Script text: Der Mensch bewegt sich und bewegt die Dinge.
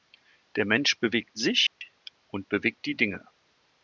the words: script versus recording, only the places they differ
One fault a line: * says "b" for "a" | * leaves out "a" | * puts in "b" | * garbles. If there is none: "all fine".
all fine